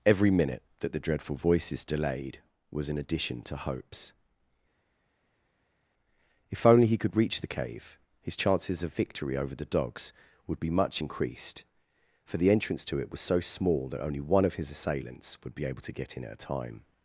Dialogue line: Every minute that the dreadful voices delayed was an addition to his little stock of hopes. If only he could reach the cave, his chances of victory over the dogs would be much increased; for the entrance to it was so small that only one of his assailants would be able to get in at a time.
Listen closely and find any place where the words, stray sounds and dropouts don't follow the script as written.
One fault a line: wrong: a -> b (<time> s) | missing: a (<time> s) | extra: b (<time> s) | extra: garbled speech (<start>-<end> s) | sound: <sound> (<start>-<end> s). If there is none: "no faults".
missing: his little stock of (3.5 s)